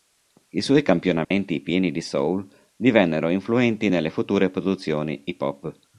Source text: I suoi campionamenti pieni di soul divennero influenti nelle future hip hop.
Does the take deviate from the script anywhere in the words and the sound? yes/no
yes